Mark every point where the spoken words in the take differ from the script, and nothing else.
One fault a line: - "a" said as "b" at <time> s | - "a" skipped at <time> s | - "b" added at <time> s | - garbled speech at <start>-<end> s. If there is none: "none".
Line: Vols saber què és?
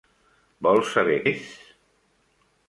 - "què" skipped at 1.2 s